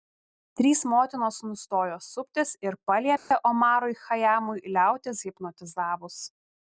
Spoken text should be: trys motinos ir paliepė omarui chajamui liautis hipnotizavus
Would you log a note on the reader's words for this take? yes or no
yes